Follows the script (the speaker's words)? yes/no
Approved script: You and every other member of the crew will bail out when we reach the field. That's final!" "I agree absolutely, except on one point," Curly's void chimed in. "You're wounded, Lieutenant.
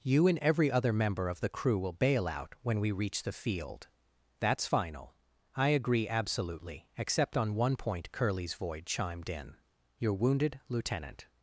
yes